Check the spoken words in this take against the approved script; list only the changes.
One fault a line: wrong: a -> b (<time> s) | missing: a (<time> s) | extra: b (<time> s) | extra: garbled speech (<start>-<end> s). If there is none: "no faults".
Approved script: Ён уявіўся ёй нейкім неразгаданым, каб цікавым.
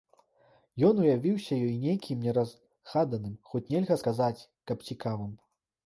extra: хоць нельга сказаць (3.5 s)